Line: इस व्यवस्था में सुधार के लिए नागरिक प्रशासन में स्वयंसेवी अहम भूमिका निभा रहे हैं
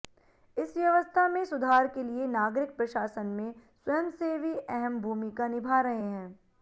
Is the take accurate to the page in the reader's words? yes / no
yes